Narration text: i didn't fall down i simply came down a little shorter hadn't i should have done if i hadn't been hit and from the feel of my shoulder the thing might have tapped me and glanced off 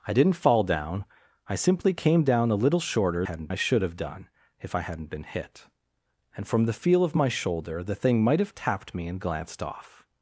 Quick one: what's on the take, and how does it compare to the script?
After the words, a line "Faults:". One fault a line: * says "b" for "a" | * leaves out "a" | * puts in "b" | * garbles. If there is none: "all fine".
i didn't fall down i simply came down a little shorter hadn't i should have done if i hadn't been hit and from the feel of my shoulder the thing might have tapped me and glanced off
Faults:
all fine